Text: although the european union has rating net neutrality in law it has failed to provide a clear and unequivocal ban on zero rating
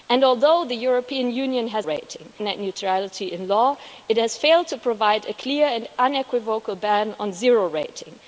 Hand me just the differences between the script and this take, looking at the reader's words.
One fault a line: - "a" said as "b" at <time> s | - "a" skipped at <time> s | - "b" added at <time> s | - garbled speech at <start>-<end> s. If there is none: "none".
none